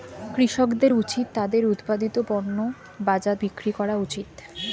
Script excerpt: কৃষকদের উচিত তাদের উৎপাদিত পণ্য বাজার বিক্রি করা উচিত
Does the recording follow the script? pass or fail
pass